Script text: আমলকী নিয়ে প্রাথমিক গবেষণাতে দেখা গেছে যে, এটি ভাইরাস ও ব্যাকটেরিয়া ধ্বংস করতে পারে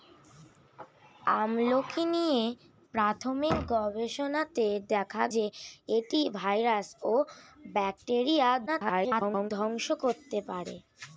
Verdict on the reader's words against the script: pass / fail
fail